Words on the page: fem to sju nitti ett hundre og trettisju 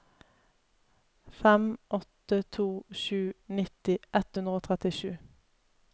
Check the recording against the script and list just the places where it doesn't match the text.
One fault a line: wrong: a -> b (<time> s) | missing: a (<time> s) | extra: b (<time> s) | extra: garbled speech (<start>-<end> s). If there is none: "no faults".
extra: åtte (1.9 s)